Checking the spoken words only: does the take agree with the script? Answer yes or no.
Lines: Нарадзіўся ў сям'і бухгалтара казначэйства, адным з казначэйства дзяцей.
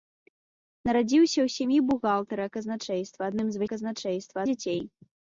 yes